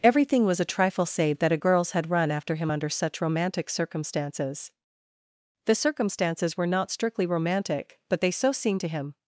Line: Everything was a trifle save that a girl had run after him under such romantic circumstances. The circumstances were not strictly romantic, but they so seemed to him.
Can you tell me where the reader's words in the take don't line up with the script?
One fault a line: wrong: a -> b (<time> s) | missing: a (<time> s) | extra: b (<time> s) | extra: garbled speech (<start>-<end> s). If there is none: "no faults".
wrong: girl -> girls (1.5 s)